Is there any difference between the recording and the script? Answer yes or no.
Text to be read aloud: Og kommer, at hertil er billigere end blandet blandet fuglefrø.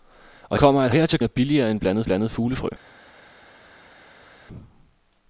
no